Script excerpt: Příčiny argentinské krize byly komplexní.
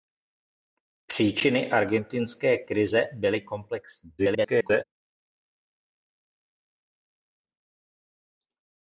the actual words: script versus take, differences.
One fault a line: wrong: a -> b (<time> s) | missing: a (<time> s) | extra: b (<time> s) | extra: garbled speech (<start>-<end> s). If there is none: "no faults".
extra: garbled speech (4.2-4.8 s)